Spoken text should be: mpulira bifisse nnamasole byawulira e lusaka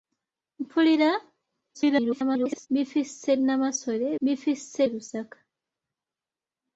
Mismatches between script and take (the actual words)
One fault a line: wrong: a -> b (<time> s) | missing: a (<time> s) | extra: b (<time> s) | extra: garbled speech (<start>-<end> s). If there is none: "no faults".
extra: garbled speech (1.7-2.7 s)
wrong: byawulira -> bifisse (4.2 s)